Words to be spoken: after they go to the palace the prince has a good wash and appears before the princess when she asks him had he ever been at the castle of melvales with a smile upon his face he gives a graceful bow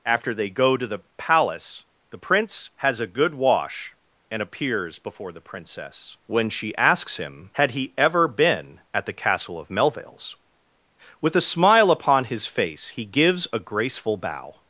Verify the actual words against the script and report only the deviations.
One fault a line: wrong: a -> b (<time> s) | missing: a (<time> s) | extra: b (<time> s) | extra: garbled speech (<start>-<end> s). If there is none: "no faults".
no faults